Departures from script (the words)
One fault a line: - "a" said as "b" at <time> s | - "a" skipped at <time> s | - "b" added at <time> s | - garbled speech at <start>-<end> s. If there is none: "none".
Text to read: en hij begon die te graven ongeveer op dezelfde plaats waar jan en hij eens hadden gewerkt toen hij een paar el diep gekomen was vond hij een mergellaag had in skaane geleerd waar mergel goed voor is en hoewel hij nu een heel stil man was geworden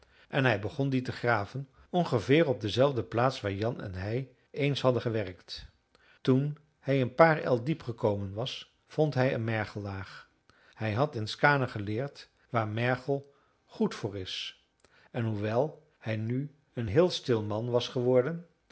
- "hij" added at 10.7 s